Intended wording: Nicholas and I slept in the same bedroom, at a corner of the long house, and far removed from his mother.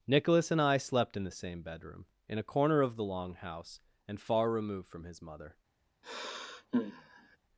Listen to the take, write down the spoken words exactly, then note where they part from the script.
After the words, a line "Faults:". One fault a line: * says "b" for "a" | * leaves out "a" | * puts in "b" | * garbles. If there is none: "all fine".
Nicholas and I slept in the same bedroom, in a corner of the long house, and far removed from his mother.
Faults:
* says "in" for "at"